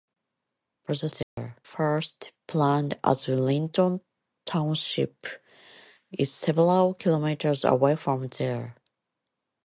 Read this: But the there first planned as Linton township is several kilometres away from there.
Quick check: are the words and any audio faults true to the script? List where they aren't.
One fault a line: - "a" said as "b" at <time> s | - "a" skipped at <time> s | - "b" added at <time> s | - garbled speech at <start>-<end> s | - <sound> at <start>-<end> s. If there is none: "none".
- dropout at 1.2-1.4 s